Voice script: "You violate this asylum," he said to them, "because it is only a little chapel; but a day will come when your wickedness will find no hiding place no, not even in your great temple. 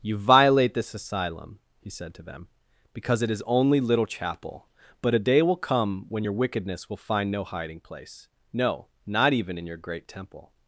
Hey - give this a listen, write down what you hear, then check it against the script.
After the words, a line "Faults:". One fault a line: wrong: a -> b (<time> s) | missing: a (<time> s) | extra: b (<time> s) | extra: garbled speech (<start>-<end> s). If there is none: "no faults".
"You violate this asylum," he said to them, "because it is only little chapel; but a day will come when your wickedness will find no hiding place no, not even in your great temple.
Faults:
missing: a (3.8 s)